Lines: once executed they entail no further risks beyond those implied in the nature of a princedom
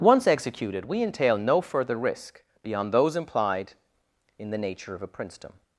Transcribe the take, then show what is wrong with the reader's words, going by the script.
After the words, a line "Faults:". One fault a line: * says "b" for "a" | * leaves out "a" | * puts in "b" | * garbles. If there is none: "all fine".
once executed we entail no further risk beyond those implied in the nature of a princedom
Faults:
* says "we" for "they"
* says "risk" for "risks"